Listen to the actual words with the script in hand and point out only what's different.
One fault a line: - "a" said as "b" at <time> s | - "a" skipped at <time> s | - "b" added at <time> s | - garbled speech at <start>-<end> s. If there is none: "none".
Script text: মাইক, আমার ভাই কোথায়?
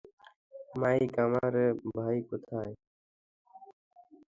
none